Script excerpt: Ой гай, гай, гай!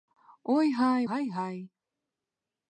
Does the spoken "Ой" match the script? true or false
true